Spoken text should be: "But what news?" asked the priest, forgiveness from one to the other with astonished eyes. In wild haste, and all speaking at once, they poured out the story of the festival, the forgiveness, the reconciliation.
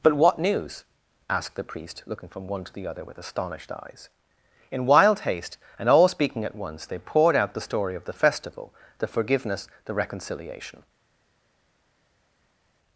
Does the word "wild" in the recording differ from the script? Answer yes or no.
no